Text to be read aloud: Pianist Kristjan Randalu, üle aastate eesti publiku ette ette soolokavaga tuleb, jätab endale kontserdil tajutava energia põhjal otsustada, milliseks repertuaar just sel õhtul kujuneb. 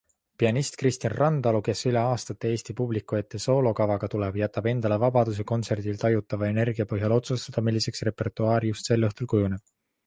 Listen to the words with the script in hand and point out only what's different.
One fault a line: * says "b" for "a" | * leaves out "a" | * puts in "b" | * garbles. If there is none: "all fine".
* puts in "kes"
* leaves out "ette"
* puts in "vabaduse"